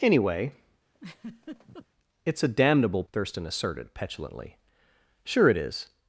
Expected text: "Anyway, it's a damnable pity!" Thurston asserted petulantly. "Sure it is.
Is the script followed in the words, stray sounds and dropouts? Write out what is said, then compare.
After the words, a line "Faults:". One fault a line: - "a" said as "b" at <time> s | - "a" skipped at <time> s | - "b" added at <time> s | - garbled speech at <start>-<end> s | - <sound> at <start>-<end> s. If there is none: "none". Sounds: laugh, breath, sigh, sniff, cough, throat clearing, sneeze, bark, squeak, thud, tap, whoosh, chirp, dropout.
"Anyway, it's a damnable!" Thurston asserted petulantly. "Sure it is.
Faults:
- laugh at 0.9-1.9 s
- "pity" skipped at 3.0 s